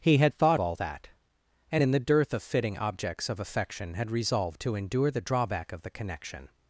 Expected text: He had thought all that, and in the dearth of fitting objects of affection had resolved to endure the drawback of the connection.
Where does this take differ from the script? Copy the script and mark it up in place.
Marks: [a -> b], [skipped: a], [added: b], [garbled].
He had thought all that, and in the dearth of fitting objects of affection had resolved to endure the drawback of the connection.